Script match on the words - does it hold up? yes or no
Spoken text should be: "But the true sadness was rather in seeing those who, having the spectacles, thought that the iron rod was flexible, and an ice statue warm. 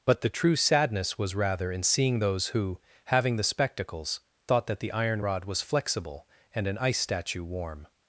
yes